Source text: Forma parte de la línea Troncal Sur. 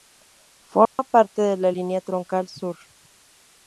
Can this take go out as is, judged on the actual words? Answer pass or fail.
pass